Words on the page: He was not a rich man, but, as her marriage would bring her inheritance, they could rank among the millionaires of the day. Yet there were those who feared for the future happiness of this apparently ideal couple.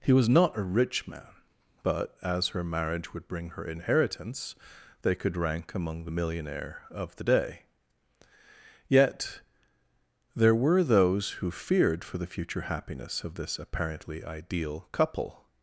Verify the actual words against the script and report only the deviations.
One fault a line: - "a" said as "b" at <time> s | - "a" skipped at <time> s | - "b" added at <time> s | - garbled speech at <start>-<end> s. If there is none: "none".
- "millionaires" said as "millionaire" at 6.1 s